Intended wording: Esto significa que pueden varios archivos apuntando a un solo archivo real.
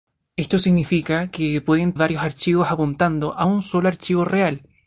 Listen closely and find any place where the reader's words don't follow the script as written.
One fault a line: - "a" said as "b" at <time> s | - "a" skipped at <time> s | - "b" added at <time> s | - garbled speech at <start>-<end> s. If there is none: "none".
none